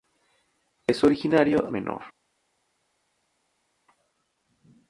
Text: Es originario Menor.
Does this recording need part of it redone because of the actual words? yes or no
no